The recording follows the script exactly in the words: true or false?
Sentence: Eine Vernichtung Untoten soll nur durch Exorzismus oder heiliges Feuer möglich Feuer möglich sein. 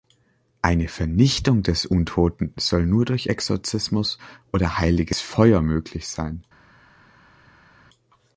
false